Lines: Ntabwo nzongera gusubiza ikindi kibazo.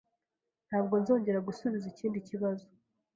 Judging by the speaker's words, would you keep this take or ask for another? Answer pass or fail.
pass